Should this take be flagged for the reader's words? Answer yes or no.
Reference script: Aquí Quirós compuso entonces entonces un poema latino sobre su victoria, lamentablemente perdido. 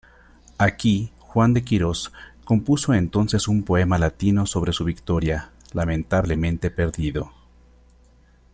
yes